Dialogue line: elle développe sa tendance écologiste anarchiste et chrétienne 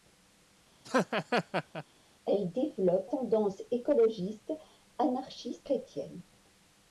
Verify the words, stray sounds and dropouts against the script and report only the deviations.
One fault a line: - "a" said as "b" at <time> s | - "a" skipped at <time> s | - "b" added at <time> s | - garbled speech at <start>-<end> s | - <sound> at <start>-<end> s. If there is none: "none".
- laugh at 0.8-1.8 s
- "sa" skipped at 3.1 s
- "et" skipped at 5.7 s